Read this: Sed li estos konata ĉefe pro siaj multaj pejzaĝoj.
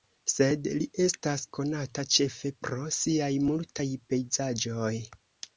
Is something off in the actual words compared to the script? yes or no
yes